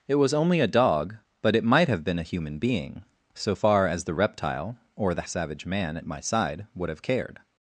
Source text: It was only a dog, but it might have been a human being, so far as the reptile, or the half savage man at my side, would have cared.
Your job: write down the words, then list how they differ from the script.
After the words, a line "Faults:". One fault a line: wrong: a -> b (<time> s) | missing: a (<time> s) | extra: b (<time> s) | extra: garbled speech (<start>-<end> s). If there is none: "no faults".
It was only a dog, but it might have been a human being, so far as the reptile, or the savage man at my side, would have cared.
Faults:
missing: half (5.2 s)